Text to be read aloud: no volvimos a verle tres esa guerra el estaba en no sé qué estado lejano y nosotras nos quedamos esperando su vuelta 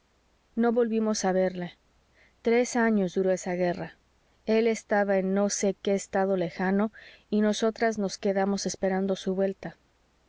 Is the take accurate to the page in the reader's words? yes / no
no